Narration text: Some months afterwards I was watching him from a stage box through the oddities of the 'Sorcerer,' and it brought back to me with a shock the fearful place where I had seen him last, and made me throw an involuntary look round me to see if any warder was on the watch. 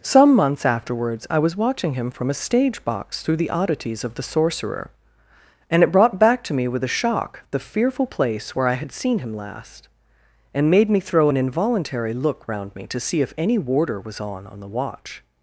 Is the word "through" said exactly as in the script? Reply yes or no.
yes